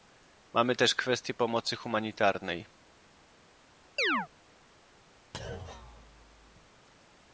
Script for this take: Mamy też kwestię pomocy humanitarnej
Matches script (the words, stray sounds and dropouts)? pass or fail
fail